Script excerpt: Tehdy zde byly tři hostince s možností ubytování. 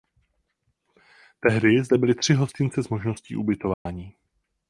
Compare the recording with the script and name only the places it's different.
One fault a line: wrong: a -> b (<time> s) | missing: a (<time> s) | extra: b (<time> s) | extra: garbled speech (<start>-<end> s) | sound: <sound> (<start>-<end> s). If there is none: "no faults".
sound: dropout (3.7-3.9 s)